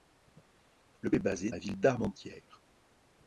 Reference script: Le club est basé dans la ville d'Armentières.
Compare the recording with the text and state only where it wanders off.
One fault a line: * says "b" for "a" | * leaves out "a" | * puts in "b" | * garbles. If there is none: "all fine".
* leaves out "club"
* leaves out "dans"